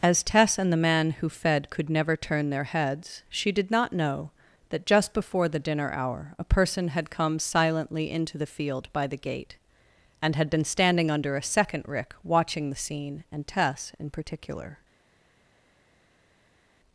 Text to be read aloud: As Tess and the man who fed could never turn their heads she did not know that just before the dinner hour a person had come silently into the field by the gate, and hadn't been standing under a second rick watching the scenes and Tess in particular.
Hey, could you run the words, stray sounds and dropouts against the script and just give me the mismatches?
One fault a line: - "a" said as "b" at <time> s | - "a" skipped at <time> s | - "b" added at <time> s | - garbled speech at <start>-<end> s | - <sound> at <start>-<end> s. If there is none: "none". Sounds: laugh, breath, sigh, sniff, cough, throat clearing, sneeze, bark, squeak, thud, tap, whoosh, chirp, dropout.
- "hadn't" said as "had" at 10.3 s
- "scenes" said as "scene" at 12.8 s